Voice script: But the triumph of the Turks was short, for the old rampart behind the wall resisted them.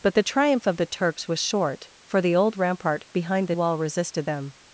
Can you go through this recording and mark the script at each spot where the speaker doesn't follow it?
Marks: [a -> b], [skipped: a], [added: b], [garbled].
But the triumph of the Turks was short, for the old rampart behind the wall resisted them.